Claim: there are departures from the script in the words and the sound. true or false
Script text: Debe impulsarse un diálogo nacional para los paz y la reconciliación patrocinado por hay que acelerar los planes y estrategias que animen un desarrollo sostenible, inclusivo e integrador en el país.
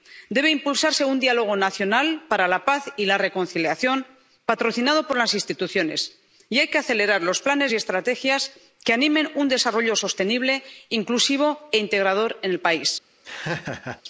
true